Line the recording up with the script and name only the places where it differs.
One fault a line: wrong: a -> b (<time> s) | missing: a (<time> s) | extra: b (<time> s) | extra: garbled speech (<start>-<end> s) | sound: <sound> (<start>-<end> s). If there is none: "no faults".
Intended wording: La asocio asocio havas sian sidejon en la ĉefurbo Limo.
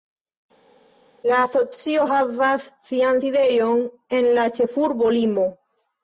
missing: asocio (2.0 s)